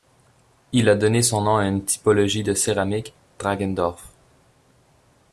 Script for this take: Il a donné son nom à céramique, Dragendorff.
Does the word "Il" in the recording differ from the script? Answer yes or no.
no